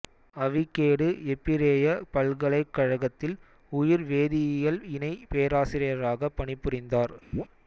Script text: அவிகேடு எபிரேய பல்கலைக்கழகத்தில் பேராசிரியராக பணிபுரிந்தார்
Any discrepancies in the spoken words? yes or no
yes